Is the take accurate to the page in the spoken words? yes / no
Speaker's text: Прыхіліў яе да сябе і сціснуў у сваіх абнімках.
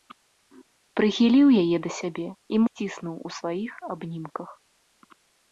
yes